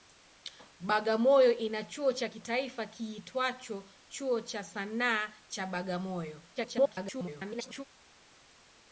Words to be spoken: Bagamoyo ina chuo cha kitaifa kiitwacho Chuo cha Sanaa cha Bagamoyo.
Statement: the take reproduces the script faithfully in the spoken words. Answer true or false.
false